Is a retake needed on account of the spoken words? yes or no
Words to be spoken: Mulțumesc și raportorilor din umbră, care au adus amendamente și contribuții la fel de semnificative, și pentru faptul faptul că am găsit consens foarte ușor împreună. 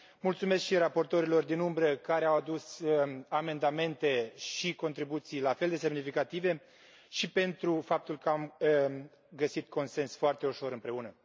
yes